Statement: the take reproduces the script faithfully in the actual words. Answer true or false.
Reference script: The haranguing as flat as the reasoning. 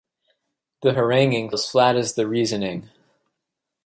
true